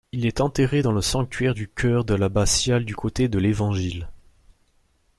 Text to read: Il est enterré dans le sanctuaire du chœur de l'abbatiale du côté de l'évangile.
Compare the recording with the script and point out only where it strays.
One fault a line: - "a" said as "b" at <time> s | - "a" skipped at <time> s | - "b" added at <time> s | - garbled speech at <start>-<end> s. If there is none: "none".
none